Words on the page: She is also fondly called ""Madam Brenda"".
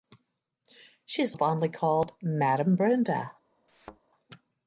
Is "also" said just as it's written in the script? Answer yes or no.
no